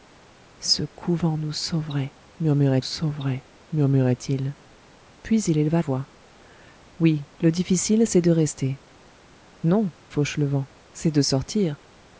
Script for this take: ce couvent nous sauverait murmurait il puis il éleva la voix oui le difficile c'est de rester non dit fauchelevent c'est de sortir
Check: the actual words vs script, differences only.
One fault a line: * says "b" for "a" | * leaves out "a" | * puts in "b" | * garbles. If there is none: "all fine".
* puts in "sauverait murmurait"
* leaves out "la"
* leaves out "dit"